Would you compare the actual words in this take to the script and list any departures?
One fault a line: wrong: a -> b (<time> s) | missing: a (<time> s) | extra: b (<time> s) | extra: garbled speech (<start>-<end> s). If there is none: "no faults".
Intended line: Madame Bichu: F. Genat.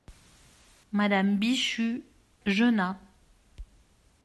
missing: F (2.0 s)